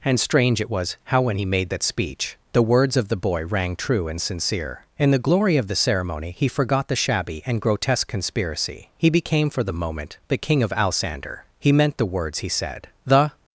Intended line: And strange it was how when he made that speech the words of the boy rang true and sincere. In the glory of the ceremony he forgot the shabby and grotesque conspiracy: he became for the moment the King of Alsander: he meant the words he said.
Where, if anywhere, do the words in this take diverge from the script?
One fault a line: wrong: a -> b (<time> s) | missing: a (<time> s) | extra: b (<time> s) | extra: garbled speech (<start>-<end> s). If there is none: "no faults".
extra: The (13.1 s)